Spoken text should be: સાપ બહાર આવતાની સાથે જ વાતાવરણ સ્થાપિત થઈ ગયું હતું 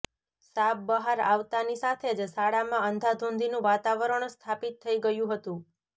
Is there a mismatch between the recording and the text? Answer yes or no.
yes